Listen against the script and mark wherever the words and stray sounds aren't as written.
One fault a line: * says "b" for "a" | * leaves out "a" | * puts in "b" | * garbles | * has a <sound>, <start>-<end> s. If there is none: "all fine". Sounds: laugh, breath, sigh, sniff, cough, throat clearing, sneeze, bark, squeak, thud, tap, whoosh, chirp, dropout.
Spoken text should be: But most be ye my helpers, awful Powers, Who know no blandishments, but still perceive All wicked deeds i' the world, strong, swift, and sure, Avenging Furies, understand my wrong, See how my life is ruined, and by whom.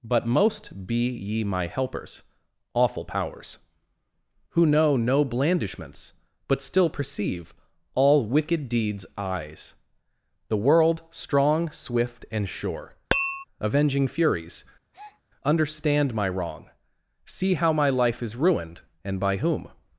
* says "eyes" for "i"
* has a tap, 13.1-13.4 s
* has a breath, 14.9-15.2 s